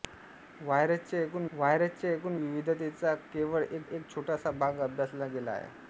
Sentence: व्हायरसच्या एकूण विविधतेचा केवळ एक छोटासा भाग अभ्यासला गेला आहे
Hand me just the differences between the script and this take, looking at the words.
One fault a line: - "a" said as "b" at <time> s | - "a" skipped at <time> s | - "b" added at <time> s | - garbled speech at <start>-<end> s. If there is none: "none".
- "व्हायरसच्या एकूण" added at 1.5 s
- "एक" added at 3.8 s